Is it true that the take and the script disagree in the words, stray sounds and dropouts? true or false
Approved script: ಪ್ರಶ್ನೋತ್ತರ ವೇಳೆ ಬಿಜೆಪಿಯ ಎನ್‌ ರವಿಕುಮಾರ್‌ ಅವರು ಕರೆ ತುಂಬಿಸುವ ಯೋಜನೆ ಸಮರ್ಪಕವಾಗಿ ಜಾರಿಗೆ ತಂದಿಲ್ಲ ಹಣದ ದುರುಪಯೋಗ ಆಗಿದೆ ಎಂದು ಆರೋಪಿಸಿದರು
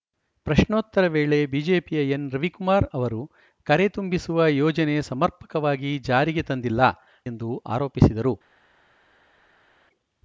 true